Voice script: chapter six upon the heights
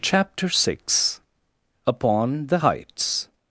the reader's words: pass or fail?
pass